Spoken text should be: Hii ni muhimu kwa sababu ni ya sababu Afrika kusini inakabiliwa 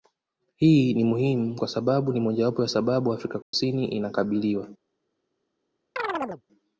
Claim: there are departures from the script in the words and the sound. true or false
true